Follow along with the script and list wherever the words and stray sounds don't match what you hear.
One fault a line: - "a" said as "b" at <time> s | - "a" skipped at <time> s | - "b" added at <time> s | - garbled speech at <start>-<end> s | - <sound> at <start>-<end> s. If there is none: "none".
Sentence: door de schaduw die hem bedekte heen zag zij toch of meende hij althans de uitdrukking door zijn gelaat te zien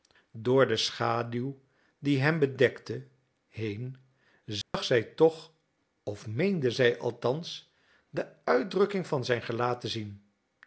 - dropout at 4.6-4.7 s
- "hij" said as "zij" at 6.7 s
- "door" said as "van" at 9.1 s